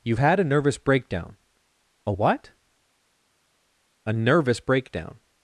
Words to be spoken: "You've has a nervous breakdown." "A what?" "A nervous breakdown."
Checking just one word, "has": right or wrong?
wrong